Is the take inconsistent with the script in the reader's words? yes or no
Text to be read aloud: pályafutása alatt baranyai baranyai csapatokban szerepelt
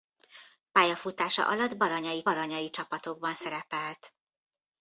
no